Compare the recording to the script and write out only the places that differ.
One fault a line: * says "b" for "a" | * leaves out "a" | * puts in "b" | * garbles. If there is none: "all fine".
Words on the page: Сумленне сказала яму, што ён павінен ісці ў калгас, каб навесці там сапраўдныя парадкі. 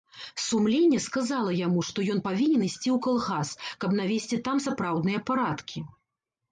all fine